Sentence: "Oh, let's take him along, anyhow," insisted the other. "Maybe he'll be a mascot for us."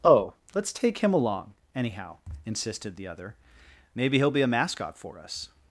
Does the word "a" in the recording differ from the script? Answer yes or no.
no